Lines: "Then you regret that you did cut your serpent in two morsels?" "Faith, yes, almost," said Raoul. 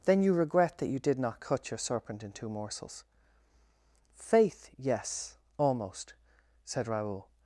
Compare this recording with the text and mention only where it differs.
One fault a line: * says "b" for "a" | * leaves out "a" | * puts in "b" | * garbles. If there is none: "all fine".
* puts in "not"